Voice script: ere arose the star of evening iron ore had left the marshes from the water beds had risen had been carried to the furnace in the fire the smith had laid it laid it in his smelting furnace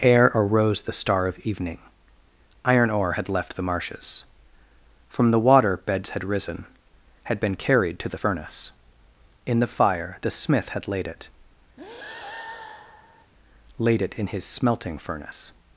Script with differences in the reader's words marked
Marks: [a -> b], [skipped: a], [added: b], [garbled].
ere arose the star of evening iron ore had left the marshes from the water beds had risen had been carried to the furnace in the fire the smith had laid it laid it in his smelting furnace